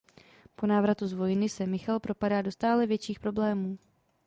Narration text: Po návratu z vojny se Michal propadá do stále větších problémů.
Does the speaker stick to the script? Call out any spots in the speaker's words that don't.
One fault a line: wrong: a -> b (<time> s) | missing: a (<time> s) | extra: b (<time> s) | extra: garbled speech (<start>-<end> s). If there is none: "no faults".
no faults